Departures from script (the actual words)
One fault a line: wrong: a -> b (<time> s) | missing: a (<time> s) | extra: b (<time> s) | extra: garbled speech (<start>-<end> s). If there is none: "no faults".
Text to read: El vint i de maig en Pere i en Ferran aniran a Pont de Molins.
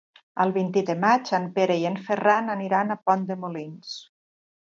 no faults